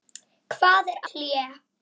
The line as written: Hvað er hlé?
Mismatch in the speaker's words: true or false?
false